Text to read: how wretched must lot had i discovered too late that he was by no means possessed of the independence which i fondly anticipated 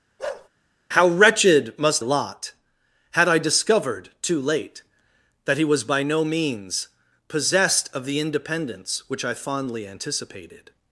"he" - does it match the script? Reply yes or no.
yes